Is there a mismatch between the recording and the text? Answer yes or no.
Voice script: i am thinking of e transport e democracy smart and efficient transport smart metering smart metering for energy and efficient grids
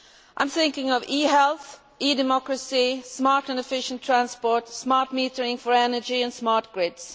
yes